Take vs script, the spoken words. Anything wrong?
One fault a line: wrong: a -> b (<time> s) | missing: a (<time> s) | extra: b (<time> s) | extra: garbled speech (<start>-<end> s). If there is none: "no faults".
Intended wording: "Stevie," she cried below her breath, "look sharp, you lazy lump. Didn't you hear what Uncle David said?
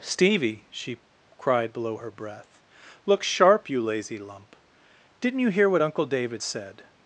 no faults